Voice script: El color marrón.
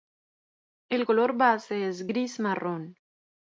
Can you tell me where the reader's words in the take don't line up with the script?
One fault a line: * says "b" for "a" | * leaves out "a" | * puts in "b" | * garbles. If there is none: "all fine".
* puts in "base es gris"